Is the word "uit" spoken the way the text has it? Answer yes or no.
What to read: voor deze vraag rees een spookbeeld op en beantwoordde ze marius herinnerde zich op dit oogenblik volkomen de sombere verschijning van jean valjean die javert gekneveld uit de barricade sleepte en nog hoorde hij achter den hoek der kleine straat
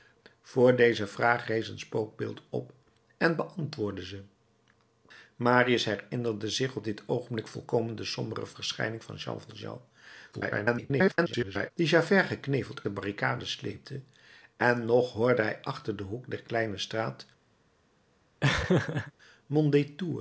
no